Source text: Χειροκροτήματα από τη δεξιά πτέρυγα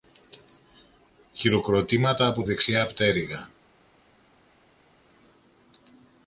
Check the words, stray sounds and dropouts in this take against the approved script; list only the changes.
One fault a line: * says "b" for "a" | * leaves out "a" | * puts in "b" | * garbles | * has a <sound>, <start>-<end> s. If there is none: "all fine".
* leaves out "τη"